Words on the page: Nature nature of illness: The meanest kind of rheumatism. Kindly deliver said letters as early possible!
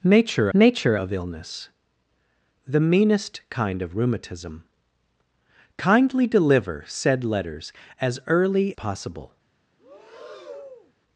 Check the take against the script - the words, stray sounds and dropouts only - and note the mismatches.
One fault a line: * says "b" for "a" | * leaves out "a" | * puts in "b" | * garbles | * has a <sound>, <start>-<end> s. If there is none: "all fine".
* has a breath, 9.8-10.9 s